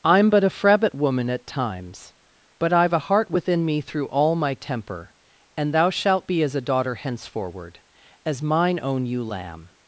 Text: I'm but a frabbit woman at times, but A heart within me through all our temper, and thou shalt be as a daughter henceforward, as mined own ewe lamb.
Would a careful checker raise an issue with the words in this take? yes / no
yes